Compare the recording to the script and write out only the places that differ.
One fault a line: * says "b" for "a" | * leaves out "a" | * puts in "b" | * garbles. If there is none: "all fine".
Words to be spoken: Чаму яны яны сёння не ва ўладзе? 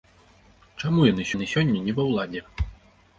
all fine